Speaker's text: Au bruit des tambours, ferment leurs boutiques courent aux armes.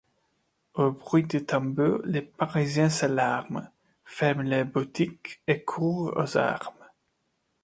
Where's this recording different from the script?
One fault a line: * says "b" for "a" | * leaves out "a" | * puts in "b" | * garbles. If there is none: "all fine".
* puts in "les Parisiens s'alarment"
* puts in "et"